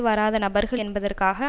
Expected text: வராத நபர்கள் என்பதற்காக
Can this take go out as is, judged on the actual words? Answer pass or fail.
pass